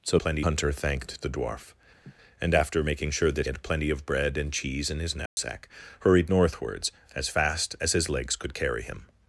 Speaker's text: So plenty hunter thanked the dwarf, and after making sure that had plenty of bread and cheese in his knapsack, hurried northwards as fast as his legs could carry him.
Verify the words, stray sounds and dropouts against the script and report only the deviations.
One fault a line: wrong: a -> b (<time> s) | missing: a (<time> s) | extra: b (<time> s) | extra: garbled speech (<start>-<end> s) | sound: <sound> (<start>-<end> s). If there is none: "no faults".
sound: laugh (2.0-2.1 s)
sound: dropout (5.3-5.4 s)